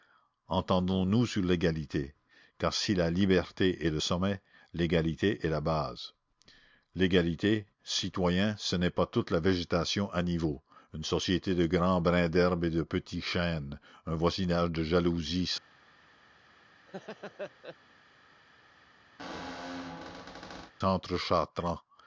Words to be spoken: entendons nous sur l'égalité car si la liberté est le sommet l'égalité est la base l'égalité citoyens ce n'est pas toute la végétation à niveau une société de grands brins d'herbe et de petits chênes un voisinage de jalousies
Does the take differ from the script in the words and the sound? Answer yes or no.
yes